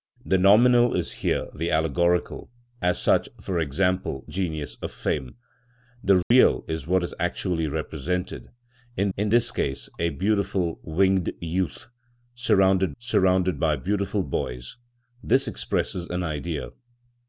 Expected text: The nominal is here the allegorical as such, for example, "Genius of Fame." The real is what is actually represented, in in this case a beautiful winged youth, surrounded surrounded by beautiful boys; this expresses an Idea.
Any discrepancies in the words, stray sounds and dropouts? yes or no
yes